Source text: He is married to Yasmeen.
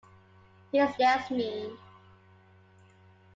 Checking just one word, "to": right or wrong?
wrong